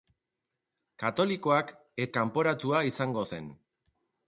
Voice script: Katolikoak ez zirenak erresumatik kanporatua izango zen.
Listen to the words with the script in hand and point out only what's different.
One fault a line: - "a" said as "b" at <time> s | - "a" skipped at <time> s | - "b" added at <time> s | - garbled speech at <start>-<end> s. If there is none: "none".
- "zirenak erresumatik" skipped at 2.1 s